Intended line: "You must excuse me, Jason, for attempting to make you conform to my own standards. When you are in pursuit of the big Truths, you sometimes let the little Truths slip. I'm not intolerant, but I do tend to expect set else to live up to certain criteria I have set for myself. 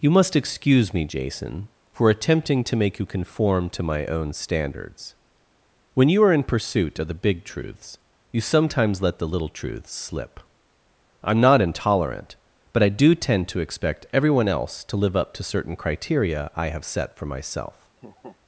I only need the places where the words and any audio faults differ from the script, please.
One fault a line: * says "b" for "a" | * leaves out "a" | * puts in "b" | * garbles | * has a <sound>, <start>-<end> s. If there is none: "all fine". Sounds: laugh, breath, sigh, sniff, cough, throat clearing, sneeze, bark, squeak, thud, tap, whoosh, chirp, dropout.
* says "everyone" for "set"
* has a laugh, 18.0-18.4 s